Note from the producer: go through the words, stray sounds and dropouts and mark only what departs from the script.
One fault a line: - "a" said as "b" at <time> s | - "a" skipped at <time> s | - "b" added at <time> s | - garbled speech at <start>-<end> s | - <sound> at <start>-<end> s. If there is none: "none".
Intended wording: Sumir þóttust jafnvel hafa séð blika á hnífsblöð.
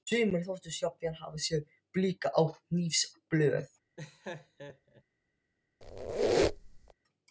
- laugh at 4.0-5.0 s
- squeak at 5.8-6.9 s